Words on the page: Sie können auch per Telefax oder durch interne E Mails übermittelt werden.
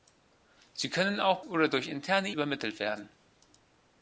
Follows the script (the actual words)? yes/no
no